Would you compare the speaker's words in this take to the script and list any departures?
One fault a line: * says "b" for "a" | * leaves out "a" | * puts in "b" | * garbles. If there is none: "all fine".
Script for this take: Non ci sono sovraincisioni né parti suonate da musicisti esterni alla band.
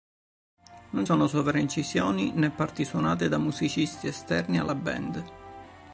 * leaves out "ci"